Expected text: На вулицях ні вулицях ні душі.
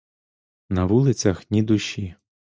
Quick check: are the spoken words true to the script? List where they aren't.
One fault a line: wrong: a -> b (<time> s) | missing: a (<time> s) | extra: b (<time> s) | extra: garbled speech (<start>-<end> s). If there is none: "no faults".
missing: вулицях ні (1.6 s)